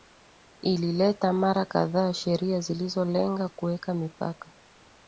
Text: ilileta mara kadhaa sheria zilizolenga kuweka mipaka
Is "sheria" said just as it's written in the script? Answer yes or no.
yes